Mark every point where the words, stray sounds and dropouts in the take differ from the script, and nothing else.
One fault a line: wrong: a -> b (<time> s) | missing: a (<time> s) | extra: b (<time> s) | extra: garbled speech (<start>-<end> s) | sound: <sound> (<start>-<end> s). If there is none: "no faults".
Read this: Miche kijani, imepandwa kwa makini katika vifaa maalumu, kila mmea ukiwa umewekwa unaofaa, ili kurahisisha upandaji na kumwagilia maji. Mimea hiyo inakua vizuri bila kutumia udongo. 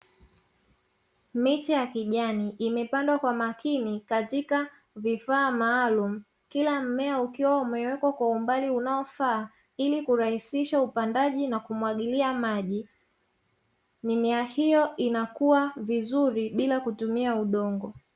extra: ya (1.7 s)
extra: kwa umbali (8.1 s)